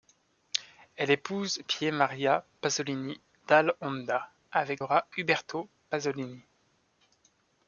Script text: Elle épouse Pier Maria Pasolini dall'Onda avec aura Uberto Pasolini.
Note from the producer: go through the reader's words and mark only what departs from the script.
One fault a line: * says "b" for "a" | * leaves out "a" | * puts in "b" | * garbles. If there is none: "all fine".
all fine